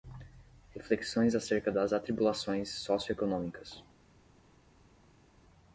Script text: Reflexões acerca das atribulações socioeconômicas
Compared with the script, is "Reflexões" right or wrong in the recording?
right